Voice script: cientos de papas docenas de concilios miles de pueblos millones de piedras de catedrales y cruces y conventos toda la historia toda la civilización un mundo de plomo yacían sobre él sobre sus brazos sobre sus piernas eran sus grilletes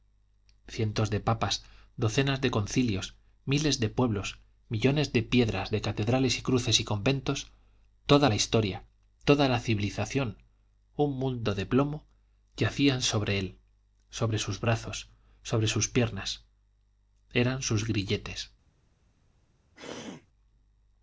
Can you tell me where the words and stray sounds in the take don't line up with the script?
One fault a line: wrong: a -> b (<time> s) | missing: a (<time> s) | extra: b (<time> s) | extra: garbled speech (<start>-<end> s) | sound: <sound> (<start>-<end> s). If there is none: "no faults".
sound: throat clearing (19.8-20.3 s)